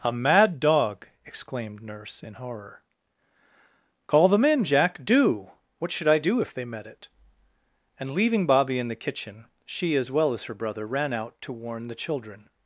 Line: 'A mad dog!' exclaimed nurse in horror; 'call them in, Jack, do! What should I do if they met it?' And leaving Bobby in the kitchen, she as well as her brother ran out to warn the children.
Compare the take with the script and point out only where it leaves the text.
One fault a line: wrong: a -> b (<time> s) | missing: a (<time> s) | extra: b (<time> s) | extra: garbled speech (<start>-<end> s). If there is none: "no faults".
no faults